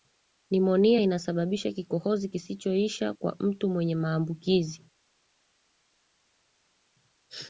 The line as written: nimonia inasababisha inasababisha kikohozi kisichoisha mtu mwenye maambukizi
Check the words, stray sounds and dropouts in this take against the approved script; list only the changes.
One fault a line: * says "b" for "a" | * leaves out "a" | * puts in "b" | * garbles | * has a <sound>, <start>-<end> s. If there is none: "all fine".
* leaves out "inasababisha"
* puts in "kwa"